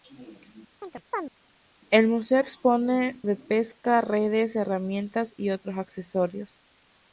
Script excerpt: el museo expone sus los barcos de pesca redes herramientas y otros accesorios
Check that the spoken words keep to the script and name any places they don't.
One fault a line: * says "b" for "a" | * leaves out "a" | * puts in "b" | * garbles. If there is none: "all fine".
* leaves out "sus los barcos"